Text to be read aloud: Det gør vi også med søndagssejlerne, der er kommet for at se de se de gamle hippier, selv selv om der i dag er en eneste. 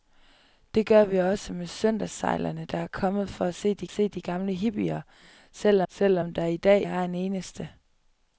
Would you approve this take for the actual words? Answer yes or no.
yes